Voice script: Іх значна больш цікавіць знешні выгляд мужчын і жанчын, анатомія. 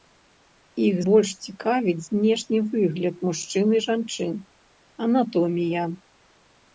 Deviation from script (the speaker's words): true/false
true